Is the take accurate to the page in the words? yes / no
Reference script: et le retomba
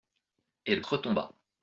yes